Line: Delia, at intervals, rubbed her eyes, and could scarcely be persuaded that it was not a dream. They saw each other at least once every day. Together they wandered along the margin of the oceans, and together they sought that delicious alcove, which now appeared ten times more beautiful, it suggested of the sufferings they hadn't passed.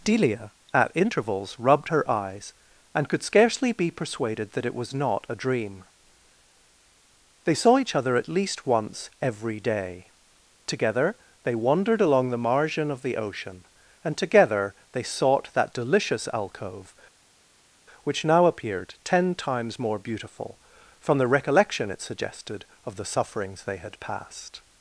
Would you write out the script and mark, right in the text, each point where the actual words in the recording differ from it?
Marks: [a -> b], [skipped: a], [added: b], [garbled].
Delia, at intervals, rubbed her eyes, and could scarcely be persuaded that it was not a dream. They saw each other at least once every day. Together they wandered along the margin of the [oceans, -> ocean] and together they sought that delicious alcove, which now appeared ten times more beautiful, [added: from the recollection] it suggested of the sufferings they [hadn't -> had] passed.